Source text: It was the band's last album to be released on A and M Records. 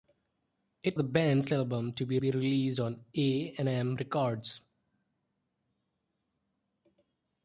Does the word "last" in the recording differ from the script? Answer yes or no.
yes